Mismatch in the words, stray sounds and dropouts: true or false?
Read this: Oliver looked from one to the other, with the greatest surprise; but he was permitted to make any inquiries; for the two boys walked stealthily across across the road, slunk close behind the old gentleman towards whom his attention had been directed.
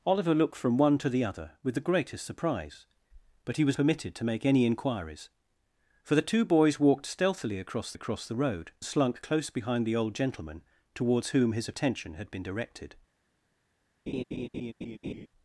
true